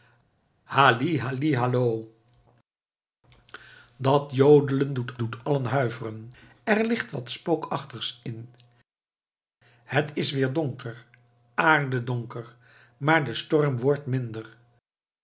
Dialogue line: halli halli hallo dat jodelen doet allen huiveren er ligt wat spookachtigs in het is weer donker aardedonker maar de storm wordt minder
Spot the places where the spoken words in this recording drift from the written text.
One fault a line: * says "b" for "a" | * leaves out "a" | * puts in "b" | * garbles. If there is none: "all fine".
* puts in "doet"